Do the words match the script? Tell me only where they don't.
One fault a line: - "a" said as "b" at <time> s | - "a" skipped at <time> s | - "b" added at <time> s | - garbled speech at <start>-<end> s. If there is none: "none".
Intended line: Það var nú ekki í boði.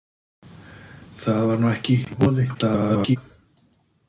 - garbled speech at 2.5-3.2 s